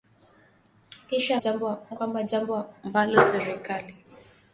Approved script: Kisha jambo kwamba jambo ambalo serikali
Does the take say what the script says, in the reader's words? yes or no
yes